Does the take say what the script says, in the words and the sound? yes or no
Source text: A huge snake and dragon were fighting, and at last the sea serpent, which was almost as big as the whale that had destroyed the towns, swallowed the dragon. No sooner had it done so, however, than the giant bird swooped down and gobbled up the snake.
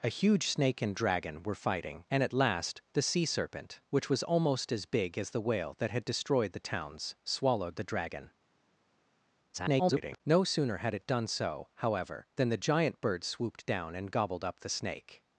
no